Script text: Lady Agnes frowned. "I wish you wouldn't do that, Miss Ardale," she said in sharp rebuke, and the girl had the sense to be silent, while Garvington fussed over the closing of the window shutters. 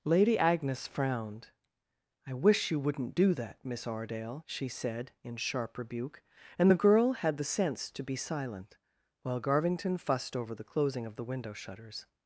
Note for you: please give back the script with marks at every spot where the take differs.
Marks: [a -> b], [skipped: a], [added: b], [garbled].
Lady Agnes frowned. "I wish you wouldn't do that, Miss Ardale," she said in sharp rebuke, and the girl had the sense to be silent, while Garvington fussed over the closing of the window shutters.